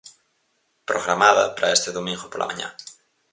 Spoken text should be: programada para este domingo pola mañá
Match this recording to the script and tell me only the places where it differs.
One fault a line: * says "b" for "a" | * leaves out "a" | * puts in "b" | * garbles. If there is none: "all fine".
all fine